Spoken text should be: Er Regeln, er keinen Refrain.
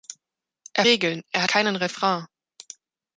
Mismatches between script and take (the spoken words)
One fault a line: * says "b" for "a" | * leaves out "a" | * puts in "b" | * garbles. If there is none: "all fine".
all fine